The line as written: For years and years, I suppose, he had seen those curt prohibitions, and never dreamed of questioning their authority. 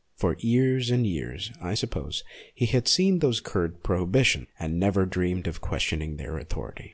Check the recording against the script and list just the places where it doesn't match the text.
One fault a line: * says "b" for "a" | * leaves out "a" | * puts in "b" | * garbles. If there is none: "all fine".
all fine